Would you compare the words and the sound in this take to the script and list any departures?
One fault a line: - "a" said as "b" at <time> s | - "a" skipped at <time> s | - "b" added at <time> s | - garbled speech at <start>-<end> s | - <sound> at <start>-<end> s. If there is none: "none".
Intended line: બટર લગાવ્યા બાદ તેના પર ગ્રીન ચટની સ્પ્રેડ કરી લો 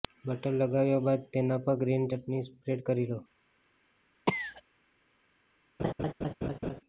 - cough at 4.3-4.6 s
- laugh at 5.8-6.8 s